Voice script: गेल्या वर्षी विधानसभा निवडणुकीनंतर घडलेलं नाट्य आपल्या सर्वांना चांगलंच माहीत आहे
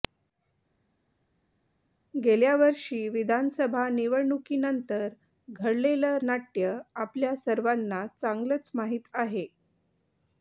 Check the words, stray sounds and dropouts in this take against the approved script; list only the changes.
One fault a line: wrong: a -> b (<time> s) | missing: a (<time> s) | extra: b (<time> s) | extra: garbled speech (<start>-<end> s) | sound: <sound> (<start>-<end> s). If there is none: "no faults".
no faults